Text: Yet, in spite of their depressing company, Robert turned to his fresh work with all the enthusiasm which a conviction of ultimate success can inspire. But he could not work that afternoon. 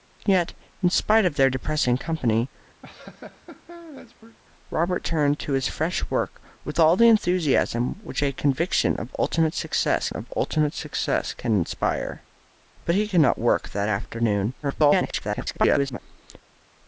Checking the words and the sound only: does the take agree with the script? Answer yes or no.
no